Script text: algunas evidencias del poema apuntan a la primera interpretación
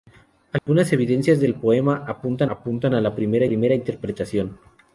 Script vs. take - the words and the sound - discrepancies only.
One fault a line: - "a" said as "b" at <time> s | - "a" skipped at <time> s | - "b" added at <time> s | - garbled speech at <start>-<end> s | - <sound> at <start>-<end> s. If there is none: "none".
- dropout at 0.6-0.7 s
- "apuntan" added at 2.5 s
- "primera" added at 3.5 s